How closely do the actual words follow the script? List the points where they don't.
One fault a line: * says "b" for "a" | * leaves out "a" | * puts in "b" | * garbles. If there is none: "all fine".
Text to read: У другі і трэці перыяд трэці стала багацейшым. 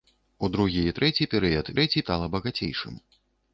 all fine